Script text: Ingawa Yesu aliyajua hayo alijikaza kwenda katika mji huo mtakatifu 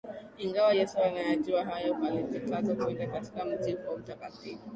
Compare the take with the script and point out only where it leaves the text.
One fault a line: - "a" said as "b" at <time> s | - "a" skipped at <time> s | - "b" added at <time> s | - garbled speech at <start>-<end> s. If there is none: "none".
none